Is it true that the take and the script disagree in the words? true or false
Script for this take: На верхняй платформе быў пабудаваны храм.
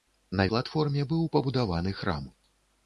true